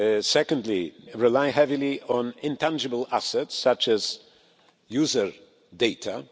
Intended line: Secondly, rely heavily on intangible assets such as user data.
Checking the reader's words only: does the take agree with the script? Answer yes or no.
yes